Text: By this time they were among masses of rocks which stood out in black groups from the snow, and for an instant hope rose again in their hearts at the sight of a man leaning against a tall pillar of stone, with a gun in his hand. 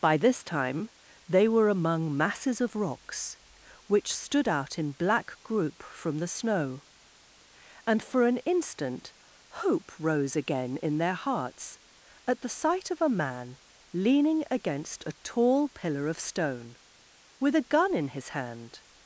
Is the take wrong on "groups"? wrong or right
wrong